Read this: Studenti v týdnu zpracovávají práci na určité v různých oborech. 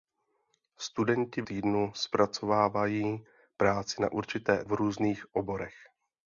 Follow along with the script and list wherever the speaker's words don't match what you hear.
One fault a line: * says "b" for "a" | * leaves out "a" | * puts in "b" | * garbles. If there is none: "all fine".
all fine